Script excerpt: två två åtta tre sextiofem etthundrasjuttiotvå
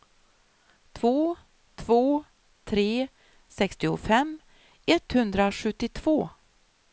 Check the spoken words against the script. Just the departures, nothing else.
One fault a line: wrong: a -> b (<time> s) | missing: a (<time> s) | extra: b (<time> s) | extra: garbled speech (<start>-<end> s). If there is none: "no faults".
missing: åtta (2.2 s)